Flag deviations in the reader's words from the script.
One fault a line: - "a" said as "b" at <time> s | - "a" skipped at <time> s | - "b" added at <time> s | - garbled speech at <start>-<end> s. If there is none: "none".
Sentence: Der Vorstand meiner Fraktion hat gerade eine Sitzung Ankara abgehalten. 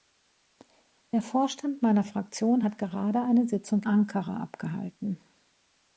none